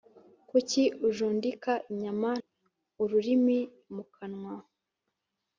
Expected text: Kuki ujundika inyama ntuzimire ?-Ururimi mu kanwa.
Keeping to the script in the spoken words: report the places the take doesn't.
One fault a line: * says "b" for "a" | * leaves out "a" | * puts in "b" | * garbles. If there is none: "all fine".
* leaves out "ntuzimire"